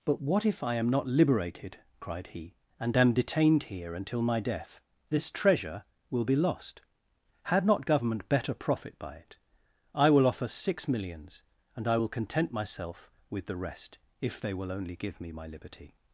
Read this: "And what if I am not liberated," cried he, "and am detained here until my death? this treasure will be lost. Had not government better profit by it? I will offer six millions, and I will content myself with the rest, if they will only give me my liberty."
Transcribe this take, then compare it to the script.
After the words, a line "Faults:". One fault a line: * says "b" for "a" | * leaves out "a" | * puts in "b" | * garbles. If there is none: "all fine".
"But what if I am not liberated," cried he, "and am detained here until my death? this treasure will be lost. Had not government better profit by it? I will offer six millions, and I will content myself with the rest, if they will only give me my liberty."
Faults:
* says "But" for "And"